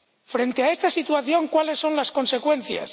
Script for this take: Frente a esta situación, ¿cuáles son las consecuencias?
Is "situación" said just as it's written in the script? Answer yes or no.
yes